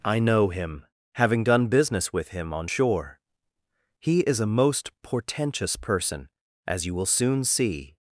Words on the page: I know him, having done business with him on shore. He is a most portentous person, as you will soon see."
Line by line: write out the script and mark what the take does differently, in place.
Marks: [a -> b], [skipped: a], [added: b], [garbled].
I know him, having done business with him on shore. He is a most portentous person, as you will soon see."